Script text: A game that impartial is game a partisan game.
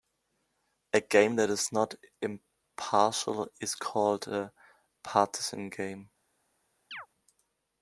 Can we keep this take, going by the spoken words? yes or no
no